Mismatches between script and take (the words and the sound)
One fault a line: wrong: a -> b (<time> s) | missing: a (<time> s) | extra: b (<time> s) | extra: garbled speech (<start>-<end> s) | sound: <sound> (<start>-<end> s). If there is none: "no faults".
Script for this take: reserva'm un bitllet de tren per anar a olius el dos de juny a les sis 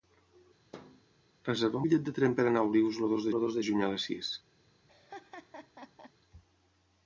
sound: thud (0.7-1.0 s)
missing: un (1.8 s)
extra: el dos (3.3 s)
sound: laugh (4.9-6.1 s)